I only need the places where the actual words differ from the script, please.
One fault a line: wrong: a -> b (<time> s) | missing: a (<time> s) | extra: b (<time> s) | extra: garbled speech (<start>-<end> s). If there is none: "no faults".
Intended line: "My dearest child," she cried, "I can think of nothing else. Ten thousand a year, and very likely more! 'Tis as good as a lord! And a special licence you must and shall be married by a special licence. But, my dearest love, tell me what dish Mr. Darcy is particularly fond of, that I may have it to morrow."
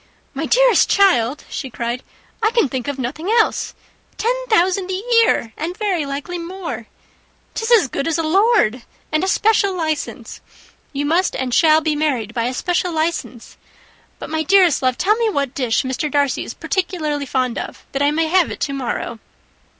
no faults